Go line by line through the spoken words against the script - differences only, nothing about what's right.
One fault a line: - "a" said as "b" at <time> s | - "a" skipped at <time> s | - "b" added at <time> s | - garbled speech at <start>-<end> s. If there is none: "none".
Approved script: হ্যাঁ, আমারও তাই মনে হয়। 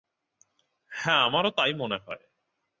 none